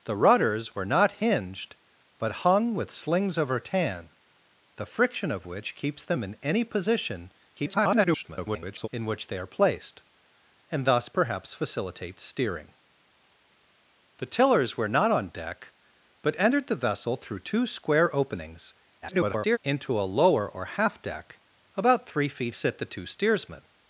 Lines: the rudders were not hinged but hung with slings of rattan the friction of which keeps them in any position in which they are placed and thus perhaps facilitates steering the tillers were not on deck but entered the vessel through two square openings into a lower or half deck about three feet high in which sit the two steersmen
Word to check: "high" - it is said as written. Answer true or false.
false